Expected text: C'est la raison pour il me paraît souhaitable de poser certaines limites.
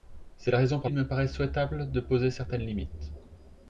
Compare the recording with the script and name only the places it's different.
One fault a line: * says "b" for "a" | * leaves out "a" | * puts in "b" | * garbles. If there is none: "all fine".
all fine